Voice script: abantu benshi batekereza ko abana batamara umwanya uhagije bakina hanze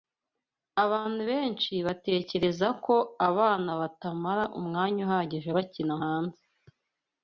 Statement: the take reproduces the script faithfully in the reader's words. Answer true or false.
true